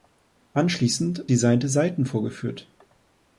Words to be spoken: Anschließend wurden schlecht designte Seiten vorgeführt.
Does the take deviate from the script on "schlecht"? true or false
true